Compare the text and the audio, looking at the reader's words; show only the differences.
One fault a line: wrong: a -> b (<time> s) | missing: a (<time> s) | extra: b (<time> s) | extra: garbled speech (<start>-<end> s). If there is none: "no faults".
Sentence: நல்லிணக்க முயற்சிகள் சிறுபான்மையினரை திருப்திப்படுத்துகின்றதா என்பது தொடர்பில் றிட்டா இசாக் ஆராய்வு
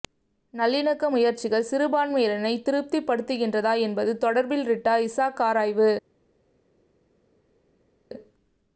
no faults